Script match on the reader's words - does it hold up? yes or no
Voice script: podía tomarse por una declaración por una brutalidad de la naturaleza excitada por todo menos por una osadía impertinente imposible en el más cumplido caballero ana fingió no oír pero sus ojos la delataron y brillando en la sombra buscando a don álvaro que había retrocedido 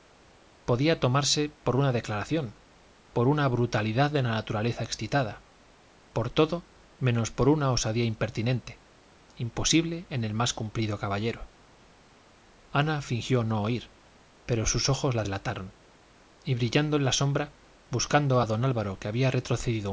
yes